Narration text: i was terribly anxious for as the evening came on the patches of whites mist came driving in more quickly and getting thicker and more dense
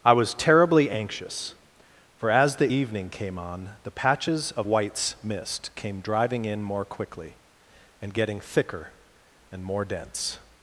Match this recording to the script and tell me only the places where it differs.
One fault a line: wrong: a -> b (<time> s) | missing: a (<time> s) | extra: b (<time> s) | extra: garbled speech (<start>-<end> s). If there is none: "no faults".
no faults